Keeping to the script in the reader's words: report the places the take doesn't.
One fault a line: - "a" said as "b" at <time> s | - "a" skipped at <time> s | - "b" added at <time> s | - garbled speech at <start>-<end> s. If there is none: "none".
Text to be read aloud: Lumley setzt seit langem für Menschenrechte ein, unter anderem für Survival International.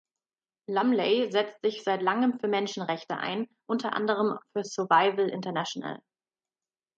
- "sich" added at 1.6 s